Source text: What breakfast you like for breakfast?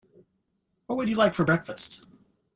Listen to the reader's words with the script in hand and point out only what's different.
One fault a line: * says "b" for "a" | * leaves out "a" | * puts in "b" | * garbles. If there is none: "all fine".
* says "would" for "breakfast"